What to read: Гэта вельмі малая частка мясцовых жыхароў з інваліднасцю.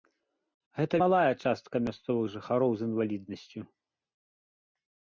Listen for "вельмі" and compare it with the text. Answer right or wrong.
wrong